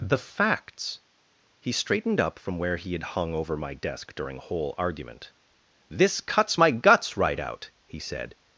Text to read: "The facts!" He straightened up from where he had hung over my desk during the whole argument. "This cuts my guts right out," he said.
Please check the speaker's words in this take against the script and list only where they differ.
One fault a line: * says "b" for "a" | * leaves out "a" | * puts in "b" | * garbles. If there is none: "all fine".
* leaves out "the"